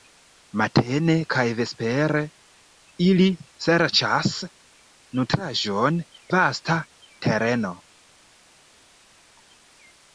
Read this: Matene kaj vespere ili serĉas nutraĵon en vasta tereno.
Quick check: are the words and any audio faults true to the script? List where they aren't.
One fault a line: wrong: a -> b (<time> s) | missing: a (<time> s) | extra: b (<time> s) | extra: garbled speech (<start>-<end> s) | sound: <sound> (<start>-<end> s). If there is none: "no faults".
missing: en (6.0 s)